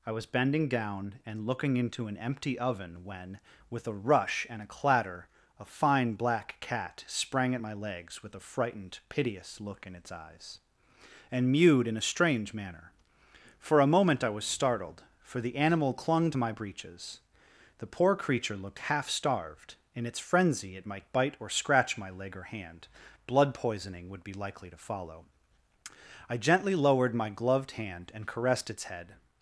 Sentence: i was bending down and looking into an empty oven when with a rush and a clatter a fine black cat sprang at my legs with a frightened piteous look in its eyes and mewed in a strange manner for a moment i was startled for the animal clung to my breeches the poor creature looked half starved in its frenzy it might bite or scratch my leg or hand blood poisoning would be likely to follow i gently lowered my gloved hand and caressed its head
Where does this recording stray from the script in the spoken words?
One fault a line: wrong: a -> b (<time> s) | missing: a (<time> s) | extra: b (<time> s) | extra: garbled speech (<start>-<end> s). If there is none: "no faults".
no faults